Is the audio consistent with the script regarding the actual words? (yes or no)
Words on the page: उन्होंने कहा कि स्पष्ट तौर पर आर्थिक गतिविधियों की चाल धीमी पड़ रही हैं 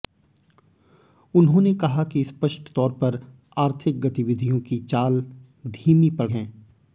no